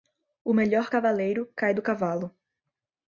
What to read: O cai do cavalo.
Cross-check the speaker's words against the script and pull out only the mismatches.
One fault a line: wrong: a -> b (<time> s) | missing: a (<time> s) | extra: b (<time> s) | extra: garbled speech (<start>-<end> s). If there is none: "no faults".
extra: melhor cavaleiro (0.5 s)